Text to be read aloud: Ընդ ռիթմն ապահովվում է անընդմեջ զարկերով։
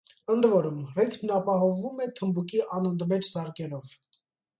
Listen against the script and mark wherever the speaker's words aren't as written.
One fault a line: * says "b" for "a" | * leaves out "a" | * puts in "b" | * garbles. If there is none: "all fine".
* puts in "որում"
* puts in "թմբուկի"